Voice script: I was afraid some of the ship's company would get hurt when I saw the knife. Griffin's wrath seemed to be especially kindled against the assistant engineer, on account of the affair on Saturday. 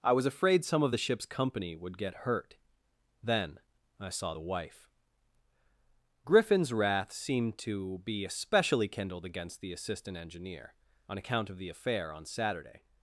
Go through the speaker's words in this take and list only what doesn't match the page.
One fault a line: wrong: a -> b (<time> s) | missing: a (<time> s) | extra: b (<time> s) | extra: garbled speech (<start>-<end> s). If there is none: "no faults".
wrong: when -> then (3.2 s)
wrong: knife -> wife (4.4 s)